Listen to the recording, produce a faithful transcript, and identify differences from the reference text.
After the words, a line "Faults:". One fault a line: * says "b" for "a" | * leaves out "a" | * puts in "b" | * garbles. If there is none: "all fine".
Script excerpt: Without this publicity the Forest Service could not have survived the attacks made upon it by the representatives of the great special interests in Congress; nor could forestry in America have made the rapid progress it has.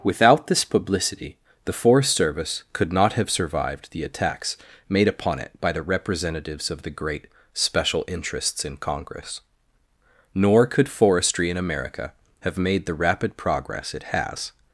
Without this publicity the Forest Service could not have survived the attacks made upon it by the representatives of the great special interests in Congress; nor could forestry in America have made the rapid progress it has.
Faults:
all fine